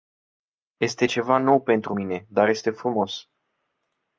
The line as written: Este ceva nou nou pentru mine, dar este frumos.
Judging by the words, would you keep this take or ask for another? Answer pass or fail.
fail